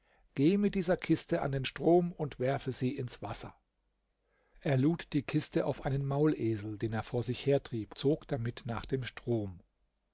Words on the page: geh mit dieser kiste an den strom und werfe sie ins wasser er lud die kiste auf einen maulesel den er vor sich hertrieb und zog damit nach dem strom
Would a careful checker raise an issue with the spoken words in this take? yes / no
yes